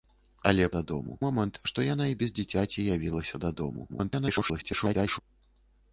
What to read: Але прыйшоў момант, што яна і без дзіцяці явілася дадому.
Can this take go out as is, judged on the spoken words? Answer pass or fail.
fail